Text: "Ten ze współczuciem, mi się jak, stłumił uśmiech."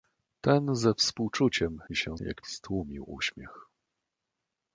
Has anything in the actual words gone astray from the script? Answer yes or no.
no